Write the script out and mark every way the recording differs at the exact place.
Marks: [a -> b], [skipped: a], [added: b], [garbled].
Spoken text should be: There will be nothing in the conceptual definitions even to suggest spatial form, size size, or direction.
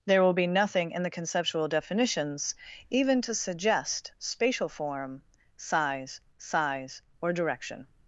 There will be nothing in the conceptual definitions even to suggest spatial form, size size, or direction.